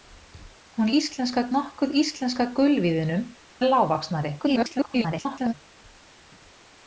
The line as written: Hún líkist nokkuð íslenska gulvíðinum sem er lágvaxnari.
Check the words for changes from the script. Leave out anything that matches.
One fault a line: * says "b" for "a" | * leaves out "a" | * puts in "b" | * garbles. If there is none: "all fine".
* says "íslenska" for "líkist"
* leaves out "sem"
* garbles